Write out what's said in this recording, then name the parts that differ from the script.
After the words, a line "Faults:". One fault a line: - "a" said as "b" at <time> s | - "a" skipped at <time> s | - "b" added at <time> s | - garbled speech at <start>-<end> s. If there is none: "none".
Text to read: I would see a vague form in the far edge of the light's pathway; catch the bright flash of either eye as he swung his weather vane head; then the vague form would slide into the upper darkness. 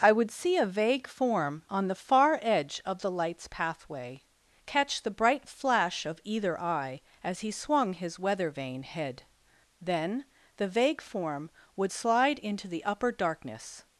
I would see a vague form on the far edge of the light's pathway; catch the bright flash of either eye as he swung his weather vane head; then the vague form would slide into the upper darkness.
Faults:
- "in" said as "on" at 1.7 s